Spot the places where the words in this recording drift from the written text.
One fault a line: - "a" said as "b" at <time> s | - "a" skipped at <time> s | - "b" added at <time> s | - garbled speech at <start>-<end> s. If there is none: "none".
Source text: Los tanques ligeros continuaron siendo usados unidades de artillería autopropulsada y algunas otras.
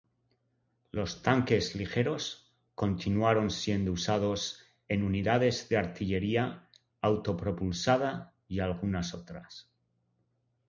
- "en" added at 4.9 s